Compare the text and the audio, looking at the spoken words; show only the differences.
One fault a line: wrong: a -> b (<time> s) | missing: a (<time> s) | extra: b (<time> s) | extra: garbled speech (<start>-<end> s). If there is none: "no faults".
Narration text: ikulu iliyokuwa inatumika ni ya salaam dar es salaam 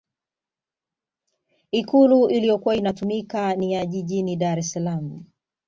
wrong: salaam -> jijini (3.9 s)